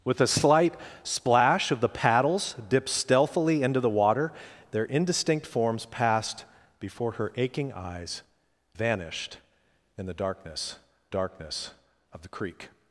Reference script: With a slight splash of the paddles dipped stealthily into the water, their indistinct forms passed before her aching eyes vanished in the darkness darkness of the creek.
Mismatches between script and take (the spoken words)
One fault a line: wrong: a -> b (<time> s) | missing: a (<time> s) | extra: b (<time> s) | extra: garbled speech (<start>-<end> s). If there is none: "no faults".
no faults